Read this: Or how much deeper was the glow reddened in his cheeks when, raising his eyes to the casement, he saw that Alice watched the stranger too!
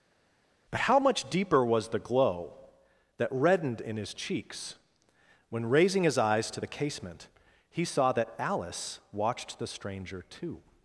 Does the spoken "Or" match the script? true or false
false